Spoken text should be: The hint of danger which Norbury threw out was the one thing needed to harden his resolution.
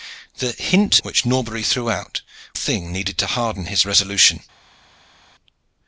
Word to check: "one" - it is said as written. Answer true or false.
false